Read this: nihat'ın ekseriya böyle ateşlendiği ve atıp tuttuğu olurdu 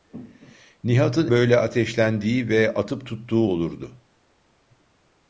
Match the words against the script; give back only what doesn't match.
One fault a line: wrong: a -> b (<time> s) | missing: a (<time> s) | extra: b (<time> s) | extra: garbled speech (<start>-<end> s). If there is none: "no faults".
missing: ekseriya (1.3 s)